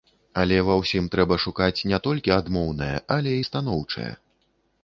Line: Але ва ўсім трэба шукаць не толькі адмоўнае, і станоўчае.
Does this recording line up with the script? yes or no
no